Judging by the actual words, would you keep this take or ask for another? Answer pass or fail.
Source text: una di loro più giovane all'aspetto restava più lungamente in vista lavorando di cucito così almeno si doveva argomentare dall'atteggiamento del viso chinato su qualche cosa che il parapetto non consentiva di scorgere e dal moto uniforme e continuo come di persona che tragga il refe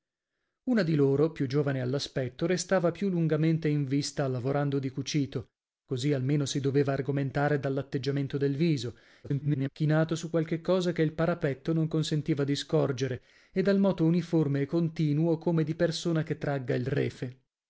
fail